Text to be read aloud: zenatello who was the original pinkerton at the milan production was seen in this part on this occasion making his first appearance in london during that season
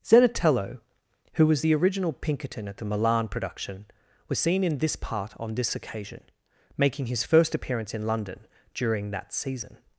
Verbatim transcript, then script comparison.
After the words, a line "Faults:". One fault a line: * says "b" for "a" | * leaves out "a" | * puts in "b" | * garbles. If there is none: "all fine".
zenatello who was the original pinkerton at the milan production was seen in this part on this occasion making his first appearance in london during that season
Faults:
all fine